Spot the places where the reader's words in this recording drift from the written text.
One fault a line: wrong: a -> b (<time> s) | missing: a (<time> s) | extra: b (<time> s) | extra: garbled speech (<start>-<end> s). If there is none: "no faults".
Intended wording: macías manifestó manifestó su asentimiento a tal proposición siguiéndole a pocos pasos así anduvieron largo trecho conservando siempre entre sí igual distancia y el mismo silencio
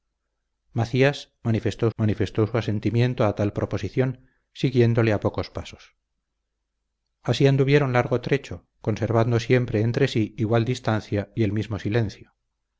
no faults